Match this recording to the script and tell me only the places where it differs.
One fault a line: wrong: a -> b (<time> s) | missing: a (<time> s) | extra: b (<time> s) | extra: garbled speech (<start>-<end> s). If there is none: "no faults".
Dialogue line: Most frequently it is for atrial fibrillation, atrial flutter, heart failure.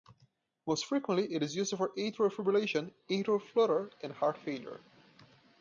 extra: used (1.6 s)
extra: and (4.0 s)